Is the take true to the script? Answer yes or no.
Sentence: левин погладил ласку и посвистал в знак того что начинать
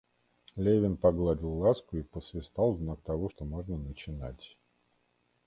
no